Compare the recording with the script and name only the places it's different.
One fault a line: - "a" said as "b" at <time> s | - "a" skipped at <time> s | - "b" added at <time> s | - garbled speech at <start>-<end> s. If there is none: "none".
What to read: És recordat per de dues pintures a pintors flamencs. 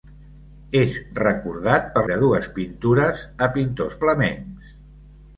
none